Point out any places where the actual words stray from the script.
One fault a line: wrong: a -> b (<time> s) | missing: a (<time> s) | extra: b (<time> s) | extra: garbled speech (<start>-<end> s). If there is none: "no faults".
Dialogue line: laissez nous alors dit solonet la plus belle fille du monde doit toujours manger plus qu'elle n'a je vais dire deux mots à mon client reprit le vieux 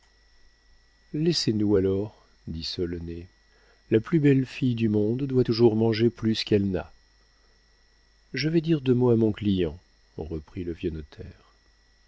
no faults